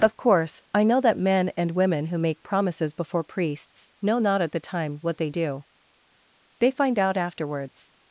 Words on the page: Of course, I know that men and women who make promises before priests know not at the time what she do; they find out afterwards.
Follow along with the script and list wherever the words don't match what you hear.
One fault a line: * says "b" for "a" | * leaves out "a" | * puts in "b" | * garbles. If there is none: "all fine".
* says "they" for "she"